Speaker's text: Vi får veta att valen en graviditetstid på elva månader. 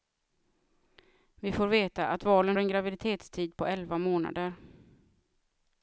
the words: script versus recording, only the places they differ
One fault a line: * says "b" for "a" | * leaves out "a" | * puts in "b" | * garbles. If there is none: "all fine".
all fine